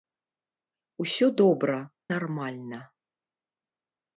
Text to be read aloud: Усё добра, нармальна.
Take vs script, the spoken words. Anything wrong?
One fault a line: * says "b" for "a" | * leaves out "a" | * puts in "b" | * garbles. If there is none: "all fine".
all fine